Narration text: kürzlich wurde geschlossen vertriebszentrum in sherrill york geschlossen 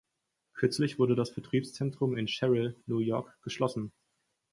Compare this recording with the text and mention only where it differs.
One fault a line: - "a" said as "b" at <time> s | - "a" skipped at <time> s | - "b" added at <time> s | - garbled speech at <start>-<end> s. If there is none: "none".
- "geschlossen" said as "das" at 1.1 s
- "new" added at 2.9 s